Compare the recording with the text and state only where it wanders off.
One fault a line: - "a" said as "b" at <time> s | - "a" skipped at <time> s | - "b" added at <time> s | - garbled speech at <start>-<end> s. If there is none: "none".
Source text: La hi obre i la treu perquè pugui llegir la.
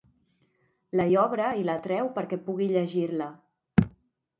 none